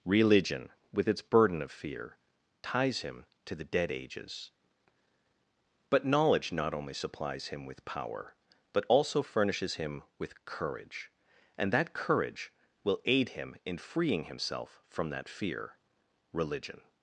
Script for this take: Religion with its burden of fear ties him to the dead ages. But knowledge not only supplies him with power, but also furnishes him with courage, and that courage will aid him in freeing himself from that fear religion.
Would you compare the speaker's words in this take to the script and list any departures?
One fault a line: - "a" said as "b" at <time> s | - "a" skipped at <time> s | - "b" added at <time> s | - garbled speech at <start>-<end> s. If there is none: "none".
none